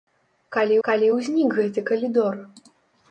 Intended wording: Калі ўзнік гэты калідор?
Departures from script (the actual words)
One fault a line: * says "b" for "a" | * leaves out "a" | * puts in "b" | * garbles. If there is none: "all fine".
* puts in "калі"